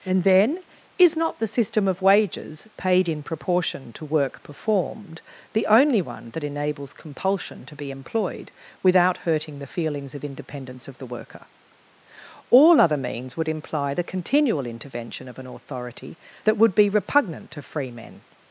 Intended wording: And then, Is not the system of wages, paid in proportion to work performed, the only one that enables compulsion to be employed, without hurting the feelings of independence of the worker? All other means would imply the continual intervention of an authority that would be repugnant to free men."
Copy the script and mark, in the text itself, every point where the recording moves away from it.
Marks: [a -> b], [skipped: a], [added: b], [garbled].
And then, Is not the system of wages, paid in proportion to work performed, the only one that enables compulsion to be employed, without hurting the feelings of independence of the worker? All other means would imply the continual intervention of an authority that would be repugnant to free men."